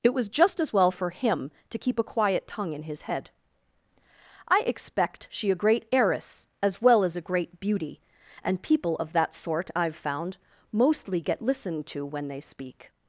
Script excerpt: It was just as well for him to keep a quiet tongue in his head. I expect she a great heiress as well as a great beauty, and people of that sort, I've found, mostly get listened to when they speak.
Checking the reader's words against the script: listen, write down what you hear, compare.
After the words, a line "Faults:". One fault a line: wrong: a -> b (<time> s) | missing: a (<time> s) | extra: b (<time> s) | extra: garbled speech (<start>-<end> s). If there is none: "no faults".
It was just as well for him to keep a quiet tongue in his head. I expect she a great heiress as well as a great beauty, and people of that sort, I've found, mostly get listened to when they speak.
Faults:
no faults